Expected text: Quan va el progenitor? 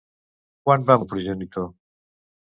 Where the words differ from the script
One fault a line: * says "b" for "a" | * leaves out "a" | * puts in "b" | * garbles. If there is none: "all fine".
all fine